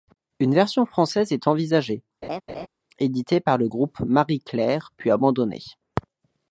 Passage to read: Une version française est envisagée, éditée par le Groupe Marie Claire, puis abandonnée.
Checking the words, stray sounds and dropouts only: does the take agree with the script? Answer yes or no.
no